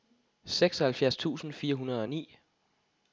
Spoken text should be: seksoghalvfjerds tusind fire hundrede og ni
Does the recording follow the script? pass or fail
pass